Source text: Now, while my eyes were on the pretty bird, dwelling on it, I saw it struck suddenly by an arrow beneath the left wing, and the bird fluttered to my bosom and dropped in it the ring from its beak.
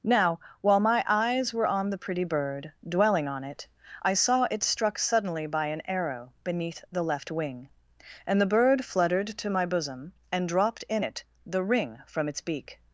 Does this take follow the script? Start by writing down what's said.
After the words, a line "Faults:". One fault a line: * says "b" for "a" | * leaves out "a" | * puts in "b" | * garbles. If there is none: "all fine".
Now, while my eyes were on the pretty bird, dwelling on it, I saw it struck suddenly by an arrow beneath the left wing, and the bird fluttered to my bosom and dropped in it the ring from its beak.
Faults:
all fine